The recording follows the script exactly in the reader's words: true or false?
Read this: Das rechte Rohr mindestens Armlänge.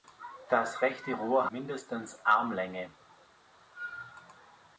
true